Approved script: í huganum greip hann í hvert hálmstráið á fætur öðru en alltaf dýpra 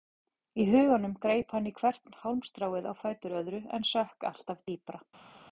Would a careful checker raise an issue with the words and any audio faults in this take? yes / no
yes